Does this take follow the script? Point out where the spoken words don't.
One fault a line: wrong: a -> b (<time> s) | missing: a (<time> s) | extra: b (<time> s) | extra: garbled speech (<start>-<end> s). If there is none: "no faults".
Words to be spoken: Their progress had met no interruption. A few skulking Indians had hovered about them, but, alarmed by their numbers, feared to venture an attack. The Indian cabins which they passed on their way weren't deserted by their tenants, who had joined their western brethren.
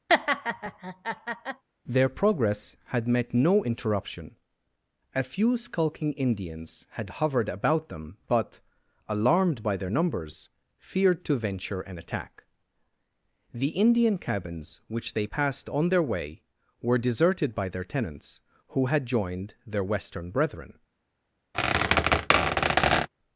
wrong: weren't -> were (16.8 s)